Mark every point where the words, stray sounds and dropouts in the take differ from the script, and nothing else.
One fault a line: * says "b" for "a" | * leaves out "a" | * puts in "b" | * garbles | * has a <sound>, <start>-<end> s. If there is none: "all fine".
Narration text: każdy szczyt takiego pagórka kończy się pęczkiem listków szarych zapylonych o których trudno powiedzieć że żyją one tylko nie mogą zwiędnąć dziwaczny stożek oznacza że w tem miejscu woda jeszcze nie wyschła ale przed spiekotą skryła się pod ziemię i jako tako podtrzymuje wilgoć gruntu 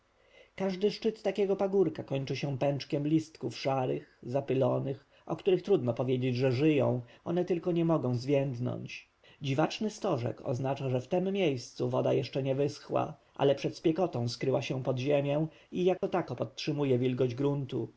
* has a dropout, 16.0-16.0 s